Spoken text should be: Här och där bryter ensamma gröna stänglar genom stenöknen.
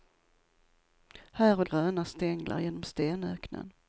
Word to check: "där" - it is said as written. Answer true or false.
false